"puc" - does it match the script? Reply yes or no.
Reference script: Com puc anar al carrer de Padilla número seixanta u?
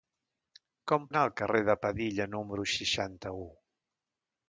no